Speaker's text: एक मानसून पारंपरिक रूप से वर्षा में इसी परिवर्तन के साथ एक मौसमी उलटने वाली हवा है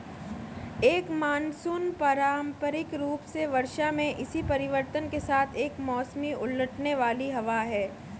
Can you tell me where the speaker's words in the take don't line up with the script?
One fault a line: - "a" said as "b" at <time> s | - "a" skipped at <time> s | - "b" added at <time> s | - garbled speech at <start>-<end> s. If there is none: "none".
none